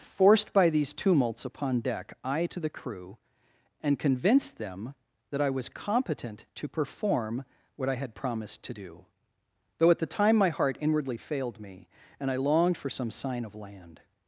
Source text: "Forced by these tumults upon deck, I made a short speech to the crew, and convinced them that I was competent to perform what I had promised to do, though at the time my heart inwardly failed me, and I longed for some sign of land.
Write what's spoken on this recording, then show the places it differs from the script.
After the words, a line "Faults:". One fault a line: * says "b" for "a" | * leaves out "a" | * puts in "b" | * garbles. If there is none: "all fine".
"Forced by these tumults upon deck, I to the crew, and convinced them that I was competent to perform what I had promised to do, though at the time my heart inwardly failed me, and I longed for some sign of land.
Faults:
* leaves out "made a short speech"